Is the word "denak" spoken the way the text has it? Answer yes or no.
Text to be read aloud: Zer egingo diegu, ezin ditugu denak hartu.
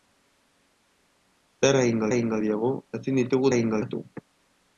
no